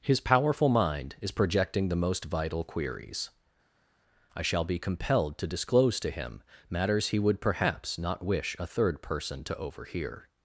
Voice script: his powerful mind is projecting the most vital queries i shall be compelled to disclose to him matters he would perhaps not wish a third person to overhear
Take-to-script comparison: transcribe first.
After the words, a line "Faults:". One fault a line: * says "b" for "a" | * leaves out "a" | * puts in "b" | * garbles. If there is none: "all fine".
his powerful mind is projecting the most vital queries i shall be compelled to disclose to him matters he would perhaps not wish a third person to overhear
Faults:
all fine